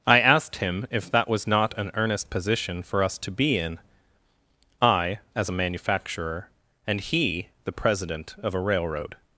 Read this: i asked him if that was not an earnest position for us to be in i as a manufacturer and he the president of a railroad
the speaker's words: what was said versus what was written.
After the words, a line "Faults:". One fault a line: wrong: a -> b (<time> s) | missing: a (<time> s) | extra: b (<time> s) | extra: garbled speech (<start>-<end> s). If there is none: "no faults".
i asked him if that was not an earnest position for us to be in i as a manufacturer and he the president of a railroad
Faults:
no faults